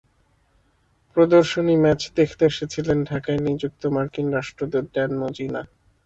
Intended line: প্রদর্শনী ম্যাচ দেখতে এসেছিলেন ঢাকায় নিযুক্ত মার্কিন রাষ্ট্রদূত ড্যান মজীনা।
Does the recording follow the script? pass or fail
pass